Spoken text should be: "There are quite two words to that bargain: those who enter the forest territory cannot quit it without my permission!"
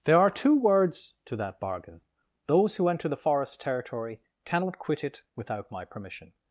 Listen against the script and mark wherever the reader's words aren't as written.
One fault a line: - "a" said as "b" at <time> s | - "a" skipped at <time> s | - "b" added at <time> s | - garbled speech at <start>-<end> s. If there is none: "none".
- "quite" skipped at 0.3 s